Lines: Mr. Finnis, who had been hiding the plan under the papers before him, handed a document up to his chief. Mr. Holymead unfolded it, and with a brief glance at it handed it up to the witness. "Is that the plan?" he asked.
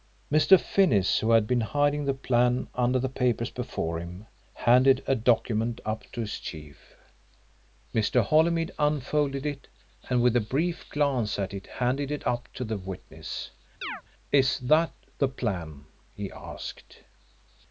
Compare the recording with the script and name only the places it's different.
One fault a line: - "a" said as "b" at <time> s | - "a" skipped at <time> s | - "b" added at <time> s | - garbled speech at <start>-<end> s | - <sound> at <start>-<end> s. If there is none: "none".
- chirp at 13.8-14.0 s